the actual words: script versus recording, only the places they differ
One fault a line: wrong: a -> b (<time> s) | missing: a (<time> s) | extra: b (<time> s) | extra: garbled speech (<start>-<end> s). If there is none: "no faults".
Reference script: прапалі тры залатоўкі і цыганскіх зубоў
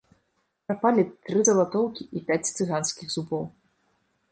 extra: пяць (2.3 s)